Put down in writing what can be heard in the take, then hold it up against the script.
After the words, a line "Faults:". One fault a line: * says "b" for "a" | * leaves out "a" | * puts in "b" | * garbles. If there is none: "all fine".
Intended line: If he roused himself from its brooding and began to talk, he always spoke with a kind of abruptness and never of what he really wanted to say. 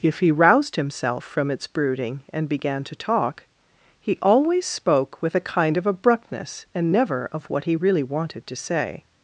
If he roused himself from its brooding and began to talk, he always spoke with a kind of abruptness and never of what he really wanted to say.
Faults:
all fine